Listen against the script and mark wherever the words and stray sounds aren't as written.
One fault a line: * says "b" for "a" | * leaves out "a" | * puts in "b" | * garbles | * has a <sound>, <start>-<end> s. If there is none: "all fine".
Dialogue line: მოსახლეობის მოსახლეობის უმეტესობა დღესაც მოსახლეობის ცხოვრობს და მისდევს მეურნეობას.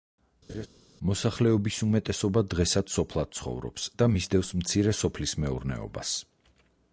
* has a laugh, 0.5-0.7 s
* leaves out "მოსახლეობის"
* says "სოფლად" for "მოსახლეობის"
* puts in "მცირე სოფლის"